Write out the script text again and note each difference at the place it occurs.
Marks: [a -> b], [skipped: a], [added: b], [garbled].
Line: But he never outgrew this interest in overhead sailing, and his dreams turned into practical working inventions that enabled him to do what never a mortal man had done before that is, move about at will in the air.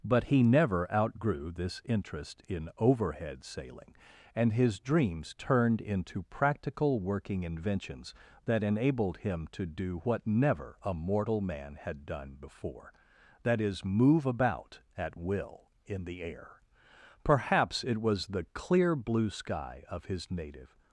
But he never outgrew this interest in overhead sailing, and his dreams turned into practical working inventions that enabled him to do what never a mortal man had done before that is, move about at will in the air. [added: Perhaps it was the clear blue sky of his native]